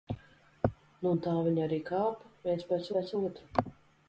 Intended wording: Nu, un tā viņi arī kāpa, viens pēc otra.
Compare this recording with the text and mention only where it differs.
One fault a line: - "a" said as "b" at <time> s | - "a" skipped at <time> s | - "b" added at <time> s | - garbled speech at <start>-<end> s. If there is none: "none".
- "pēc" added at 2.9 s